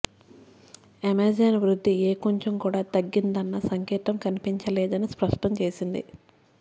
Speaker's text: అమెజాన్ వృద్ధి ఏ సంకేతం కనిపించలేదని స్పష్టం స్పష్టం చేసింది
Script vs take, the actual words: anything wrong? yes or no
yes